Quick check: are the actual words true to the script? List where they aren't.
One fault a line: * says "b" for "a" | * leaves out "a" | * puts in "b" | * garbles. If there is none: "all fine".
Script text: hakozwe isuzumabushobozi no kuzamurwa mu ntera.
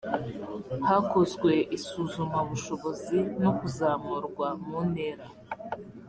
all fine